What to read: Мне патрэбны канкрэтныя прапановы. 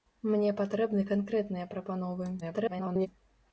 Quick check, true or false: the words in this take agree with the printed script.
false